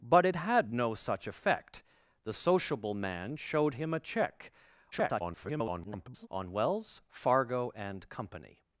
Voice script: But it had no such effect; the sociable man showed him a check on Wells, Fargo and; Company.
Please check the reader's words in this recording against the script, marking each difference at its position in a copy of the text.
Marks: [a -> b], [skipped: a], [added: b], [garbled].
But it had no such effect; the sociable man showed him a check [garbled] on Wells, Fargo and; Company.